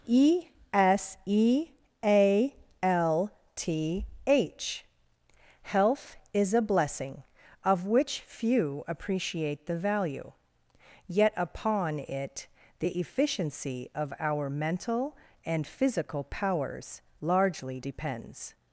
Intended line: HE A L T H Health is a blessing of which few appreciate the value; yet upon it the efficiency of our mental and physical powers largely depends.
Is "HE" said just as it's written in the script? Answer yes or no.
no